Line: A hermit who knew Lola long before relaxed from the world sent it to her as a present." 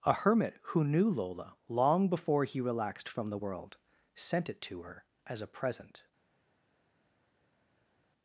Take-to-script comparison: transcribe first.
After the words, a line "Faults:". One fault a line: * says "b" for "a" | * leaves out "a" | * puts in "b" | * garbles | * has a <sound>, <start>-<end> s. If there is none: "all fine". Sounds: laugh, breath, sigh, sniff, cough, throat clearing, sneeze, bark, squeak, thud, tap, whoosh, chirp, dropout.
A hermit who knew Lola long before he relaxed from the world sent it to her as a present."
Faults:
* puts in "he"